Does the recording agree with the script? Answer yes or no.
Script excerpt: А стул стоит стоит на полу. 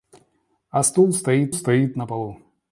yes